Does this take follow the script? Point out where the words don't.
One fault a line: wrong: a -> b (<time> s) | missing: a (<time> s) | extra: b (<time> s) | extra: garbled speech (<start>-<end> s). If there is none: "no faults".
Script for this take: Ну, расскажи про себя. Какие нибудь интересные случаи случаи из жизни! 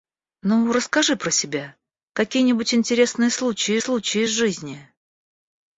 no faults